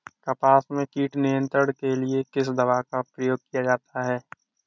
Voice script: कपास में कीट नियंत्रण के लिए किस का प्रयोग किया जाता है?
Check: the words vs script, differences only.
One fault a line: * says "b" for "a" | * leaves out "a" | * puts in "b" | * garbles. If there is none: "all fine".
* puts in "दवा"